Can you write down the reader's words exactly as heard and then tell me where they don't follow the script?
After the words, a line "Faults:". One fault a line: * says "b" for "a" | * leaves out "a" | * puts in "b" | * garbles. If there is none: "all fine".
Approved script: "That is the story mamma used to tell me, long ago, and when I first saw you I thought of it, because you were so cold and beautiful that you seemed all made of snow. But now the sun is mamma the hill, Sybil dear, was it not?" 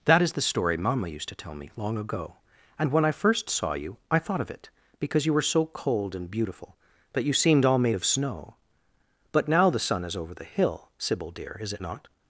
"That is the story mamma used to tell me, long ago, and when I first saw you I thought of it, because you were so cold and beautiful that you seemed all made of snow. But now the sun is over the hill, Sybil dear, is it not?"
Faults:
* says "over" for "mamma"
* says "is" for "was"